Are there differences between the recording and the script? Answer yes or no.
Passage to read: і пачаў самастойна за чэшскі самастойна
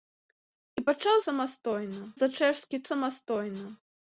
no